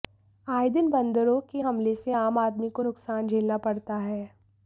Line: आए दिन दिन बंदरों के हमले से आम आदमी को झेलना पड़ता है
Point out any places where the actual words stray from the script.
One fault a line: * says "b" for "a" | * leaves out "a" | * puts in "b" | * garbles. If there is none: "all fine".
* leaves out "दिन"
* puts in "नुकसान"